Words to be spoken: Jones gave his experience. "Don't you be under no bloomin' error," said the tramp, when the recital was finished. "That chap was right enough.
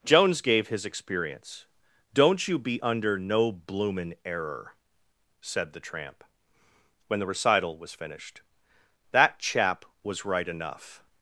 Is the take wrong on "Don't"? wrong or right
right